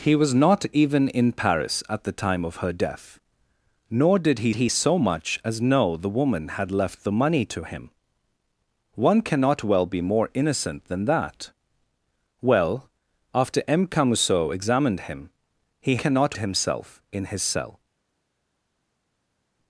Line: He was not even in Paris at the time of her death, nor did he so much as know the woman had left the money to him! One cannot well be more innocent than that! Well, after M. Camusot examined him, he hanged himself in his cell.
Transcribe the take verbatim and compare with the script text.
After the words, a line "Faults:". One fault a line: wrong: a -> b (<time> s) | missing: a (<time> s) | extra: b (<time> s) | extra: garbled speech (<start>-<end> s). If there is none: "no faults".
He was not even in Paris at the time of her death, nor did he he so much as know the woman had left the money to him! One cannot well be more innocent than that! Well, after M. Camusot examined him, he cannot himself in his cell.
Faults:
extra: he (4.6 s)
wrong: hanged -> cannot (15.9 s)